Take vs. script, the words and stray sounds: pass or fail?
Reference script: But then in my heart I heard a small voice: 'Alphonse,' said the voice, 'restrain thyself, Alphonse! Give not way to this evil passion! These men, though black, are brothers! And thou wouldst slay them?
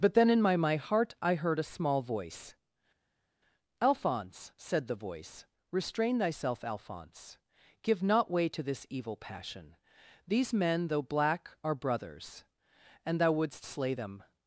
fail